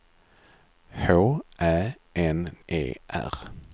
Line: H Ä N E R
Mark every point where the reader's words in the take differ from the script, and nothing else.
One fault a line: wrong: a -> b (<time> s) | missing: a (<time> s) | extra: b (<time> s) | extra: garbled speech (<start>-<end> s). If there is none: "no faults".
no faults